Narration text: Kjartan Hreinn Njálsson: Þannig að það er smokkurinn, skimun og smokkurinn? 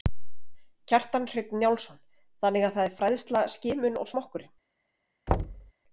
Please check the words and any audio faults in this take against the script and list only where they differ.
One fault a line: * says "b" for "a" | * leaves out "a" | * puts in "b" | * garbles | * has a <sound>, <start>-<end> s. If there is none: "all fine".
* says "fræðsla" for "smokkurinn"
* has a thud, 5.3-5.7 s